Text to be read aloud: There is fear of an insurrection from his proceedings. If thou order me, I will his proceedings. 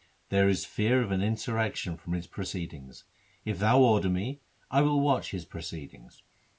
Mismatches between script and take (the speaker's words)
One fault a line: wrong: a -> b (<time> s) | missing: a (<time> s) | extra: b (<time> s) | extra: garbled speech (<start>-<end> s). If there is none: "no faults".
extra: watch (5.0 s)